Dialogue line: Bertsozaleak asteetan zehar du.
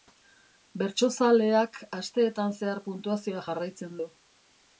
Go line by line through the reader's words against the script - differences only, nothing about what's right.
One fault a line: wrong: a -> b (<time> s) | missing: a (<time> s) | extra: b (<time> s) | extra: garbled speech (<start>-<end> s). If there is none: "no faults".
extra: puntuazioa jarraitzen (2.9 s)